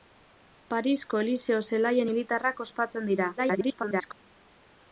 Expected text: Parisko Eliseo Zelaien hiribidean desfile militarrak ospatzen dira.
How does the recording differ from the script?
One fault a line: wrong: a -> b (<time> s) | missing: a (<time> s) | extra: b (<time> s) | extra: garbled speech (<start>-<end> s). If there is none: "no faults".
missing: hiribidean desfile (2.1 s)
extra: garbled speech (3.4-4.1 s)